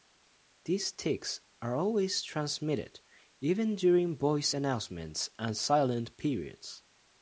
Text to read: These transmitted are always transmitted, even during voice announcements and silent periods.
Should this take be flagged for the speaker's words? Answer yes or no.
yes